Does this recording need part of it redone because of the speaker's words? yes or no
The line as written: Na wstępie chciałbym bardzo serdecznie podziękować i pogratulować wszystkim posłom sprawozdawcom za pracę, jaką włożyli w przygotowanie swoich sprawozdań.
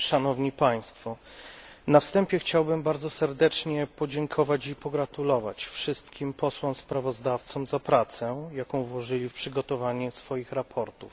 no